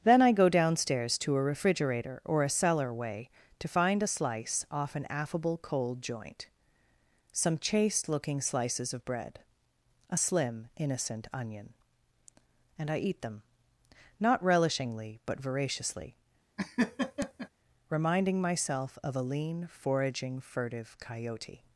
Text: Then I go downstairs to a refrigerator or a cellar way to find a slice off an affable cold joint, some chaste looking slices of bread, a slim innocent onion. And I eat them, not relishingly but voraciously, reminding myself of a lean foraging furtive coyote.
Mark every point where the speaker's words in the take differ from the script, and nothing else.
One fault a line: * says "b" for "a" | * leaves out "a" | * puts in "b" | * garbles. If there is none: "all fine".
all fine